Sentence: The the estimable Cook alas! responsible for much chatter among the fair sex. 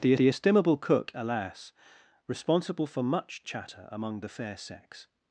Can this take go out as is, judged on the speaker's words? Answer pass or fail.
pass